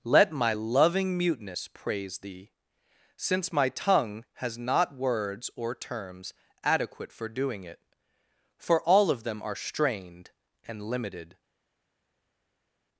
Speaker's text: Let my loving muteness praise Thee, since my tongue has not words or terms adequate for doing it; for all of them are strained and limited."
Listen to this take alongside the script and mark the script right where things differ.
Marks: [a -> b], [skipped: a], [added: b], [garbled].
Let my loving muteness praise Thee, since my tongue has not words or terms adequate for doing it; for all of them are strained and limited."